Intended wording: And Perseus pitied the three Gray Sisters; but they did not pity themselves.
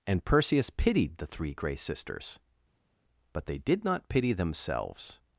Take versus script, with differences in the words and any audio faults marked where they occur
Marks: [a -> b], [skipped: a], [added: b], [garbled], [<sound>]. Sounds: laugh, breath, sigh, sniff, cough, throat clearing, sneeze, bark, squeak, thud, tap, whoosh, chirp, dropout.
And Perseus pitied the three Gray Sisters; but they did not pity themselves.